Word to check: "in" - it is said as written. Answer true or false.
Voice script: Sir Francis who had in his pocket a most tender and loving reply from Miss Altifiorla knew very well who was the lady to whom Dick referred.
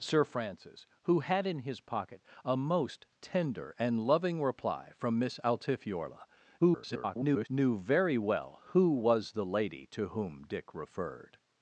true